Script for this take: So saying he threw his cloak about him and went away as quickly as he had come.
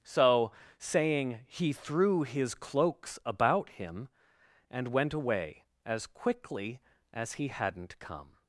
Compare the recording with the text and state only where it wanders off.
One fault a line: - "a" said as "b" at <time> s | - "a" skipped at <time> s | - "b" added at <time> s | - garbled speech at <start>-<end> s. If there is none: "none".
- "cloak" said as "cloaks" at 2.5 s
- "had" said as "hadn't" at 7.5 s